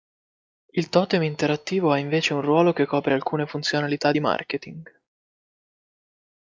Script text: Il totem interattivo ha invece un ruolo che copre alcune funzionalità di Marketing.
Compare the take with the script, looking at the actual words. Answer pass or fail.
pass